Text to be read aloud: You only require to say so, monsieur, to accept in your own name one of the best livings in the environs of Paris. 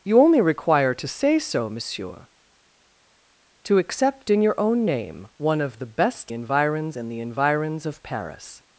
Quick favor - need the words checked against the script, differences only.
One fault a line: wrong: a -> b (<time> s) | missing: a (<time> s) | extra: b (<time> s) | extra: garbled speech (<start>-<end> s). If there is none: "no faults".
wrong: livings -> environs (6.3 s)